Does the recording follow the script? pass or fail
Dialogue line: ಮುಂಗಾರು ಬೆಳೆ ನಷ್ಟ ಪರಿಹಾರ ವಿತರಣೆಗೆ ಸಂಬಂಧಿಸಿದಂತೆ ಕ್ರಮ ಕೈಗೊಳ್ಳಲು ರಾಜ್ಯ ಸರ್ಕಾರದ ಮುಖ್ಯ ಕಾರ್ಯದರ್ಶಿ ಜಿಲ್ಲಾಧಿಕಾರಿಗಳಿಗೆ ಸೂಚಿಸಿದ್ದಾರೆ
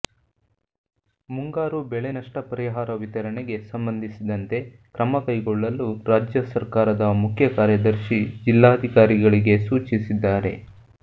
pass